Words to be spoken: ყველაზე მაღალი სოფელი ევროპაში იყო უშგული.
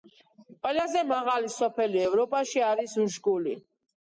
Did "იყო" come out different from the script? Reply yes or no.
yes